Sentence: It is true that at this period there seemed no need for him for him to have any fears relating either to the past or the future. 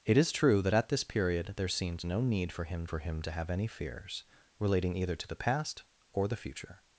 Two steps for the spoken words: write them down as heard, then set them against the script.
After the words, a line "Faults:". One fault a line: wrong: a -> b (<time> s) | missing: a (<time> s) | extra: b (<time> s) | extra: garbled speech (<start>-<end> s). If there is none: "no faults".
It is true that at this period there seemed no need for him for him to have any fears relating either to the past or the future.
Faults:
no faults